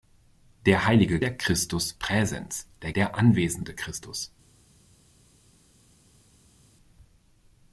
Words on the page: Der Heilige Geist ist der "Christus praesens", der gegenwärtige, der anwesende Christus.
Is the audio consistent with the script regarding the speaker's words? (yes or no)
no